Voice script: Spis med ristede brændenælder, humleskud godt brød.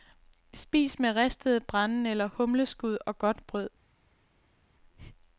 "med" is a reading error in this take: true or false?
false